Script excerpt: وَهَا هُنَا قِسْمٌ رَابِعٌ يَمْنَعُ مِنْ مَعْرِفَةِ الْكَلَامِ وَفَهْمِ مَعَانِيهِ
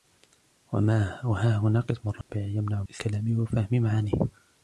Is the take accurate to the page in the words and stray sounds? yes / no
no